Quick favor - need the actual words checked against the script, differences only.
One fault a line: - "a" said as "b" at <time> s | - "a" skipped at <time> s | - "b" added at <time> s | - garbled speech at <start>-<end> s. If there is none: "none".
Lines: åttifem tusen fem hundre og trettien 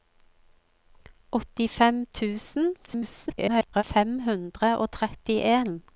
- garbled speech at 2.9-3.8 s